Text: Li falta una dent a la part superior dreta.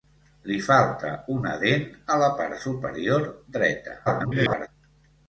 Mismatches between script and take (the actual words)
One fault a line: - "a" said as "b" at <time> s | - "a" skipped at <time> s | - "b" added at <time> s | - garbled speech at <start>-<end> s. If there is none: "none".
- garbled speech at 4.1-4.7 s